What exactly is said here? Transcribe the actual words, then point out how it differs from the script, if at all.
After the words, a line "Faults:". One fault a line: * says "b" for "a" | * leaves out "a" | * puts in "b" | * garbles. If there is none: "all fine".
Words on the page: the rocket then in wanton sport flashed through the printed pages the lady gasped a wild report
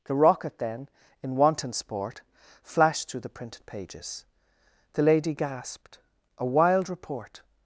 the rocket then in wanton sport flashed through the printed pages the lady gasped a wild report
Faults:
all fine